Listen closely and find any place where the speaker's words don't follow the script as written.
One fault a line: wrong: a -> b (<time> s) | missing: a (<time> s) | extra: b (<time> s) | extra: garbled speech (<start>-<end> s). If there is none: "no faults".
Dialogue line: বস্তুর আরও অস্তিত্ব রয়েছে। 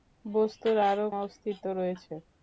no faults